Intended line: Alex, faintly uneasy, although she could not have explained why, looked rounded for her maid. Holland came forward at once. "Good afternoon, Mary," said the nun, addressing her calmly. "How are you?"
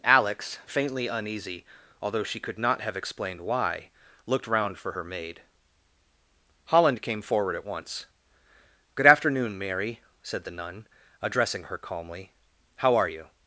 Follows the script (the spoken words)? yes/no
no